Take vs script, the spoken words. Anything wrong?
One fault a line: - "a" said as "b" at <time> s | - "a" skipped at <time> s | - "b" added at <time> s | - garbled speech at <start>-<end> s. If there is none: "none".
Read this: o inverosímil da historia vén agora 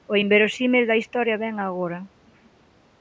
none